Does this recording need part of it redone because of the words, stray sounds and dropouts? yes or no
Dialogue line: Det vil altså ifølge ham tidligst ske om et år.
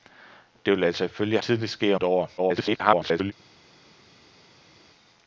yes